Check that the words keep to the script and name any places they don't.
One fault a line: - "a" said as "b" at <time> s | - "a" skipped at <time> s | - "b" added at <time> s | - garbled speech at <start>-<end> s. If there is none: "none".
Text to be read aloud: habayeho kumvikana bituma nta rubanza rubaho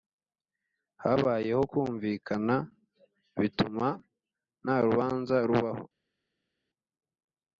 none